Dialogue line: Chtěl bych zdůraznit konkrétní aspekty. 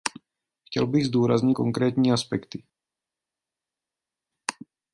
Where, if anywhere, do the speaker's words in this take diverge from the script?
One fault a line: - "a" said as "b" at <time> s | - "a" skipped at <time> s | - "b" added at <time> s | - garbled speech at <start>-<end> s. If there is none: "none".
none